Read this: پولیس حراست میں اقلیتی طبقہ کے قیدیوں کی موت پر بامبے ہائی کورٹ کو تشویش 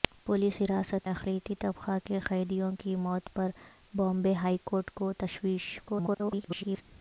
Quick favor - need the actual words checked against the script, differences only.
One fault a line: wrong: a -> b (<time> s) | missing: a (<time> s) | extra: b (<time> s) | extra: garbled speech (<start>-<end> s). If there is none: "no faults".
missing: میں (1.1 s)
extra: garbled speech (5.9-6.8 s)